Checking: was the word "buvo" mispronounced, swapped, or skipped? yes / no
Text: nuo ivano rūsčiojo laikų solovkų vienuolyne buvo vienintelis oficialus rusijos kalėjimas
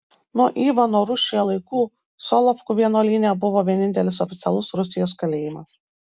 no